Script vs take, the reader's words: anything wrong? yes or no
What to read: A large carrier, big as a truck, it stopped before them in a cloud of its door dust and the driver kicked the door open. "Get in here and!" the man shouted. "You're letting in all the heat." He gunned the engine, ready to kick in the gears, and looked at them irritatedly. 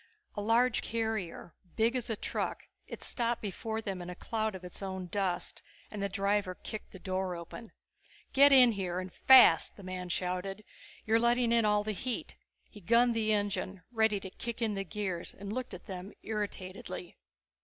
yes